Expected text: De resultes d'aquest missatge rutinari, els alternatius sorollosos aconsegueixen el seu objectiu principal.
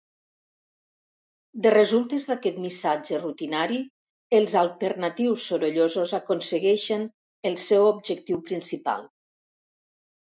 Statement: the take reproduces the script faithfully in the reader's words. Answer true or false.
true